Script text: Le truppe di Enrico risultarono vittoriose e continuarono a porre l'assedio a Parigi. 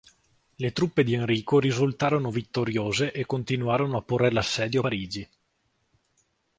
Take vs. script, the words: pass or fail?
pass